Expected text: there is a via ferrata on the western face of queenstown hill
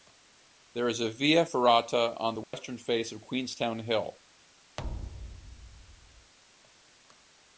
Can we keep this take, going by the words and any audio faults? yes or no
no